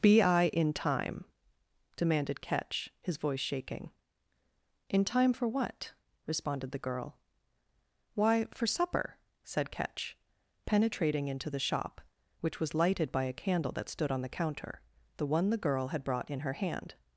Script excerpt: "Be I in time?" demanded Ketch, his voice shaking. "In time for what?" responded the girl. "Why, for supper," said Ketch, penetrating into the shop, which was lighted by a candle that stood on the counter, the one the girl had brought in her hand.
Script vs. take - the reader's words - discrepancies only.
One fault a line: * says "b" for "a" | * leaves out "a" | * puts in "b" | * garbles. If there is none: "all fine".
all fine